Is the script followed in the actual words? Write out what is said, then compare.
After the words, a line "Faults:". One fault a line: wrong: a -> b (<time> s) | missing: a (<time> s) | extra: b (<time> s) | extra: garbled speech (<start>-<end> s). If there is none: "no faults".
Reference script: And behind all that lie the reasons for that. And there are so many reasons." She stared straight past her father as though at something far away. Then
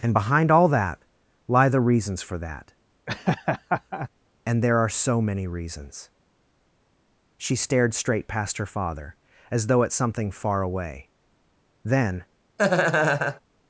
And behind all that lie the reasons for that. And there are so many reasons." She stared straight past her father as though at something far away. Then
Faults:
no faults